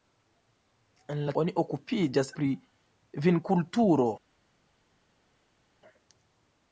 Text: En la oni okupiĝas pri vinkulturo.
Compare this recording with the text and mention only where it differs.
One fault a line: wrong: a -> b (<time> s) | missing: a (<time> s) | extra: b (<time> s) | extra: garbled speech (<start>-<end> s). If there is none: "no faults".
no faults